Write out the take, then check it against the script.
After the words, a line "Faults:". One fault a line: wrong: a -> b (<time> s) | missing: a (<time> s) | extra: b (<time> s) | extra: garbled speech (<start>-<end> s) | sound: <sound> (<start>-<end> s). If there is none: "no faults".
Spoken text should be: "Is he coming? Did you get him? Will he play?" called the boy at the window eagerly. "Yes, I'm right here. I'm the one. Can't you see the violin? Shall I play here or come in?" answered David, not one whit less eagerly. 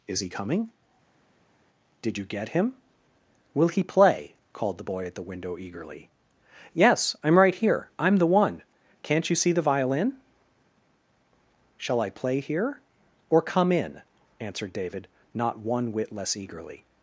"Is he coming? Did you get him? Will he play?" called the boy at the window eagerly. "Yes, I'm right here. I'm the one. Can't you see the violin? Shall I play here or come in?" answered David, not one whit less eagerly.
Faults:
no faults